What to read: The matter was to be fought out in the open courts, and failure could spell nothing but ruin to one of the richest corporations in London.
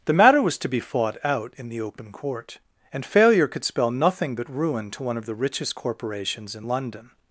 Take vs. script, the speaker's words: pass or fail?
fail